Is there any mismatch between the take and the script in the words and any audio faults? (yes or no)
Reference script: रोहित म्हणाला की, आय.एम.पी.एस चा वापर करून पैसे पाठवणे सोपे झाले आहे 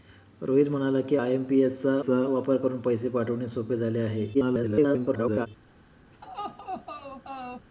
yes